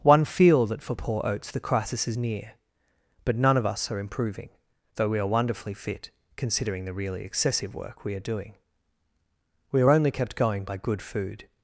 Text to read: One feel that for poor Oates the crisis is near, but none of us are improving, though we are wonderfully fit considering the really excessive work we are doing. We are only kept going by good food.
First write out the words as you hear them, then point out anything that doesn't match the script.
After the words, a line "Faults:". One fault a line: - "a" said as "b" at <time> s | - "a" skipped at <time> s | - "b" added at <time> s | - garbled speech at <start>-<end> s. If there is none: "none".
One feel that for poor Oates the crisis is near, but none of us are improving, though we are wonderfully fit considering the really excessive work we are doing. We are only kept going by good food.
Faults:
none